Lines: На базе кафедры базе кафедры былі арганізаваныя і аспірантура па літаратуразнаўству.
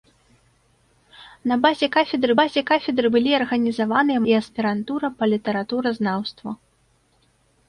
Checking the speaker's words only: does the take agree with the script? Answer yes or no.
yes